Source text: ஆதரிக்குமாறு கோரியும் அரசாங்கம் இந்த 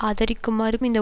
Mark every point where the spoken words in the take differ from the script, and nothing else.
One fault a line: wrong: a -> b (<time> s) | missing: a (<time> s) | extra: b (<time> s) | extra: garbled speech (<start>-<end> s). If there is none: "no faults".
missing: கோரியும் அரசாங்கம் (0.8 s)